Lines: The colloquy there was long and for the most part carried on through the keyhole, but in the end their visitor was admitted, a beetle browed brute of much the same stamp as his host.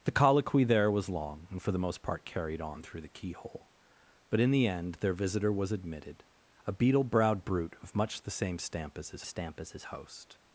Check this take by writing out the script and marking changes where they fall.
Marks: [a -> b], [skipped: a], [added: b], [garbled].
The colloquy there was long and for the most part carried on through the keyhole, but in the end their visitor was admitted, a beetle browed brute of much the same stamp as his [added: stamp as his] host.